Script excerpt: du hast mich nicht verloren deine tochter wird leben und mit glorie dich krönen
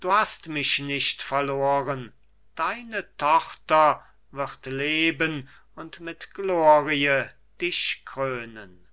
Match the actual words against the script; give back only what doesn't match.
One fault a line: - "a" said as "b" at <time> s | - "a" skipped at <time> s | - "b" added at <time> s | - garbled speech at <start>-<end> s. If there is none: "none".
none